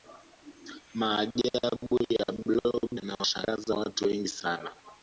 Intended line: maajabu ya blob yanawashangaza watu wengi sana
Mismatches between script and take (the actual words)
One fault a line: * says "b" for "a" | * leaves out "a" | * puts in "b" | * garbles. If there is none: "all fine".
all fine